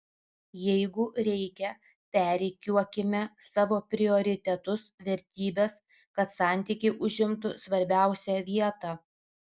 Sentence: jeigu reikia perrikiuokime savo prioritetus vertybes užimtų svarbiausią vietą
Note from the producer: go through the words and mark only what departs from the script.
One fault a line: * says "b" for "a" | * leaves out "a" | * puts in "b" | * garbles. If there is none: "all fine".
* puts in "kad santykiai"